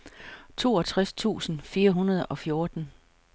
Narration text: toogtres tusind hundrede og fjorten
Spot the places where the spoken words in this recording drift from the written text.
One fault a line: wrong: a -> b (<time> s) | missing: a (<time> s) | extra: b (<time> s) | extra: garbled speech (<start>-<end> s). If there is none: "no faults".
extra: fire (1.6 s)